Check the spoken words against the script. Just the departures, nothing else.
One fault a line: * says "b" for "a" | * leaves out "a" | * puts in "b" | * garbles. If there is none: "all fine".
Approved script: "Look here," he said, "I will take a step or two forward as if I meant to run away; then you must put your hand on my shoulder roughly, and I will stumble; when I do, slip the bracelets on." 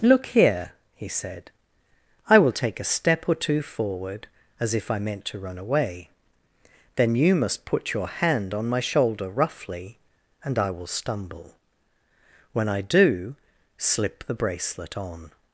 * says "bracelet" for "bracelets"